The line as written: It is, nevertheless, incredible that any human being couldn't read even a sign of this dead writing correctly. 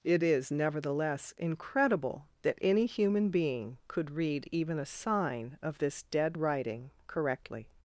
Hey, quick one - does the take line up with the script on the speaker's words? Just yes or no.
no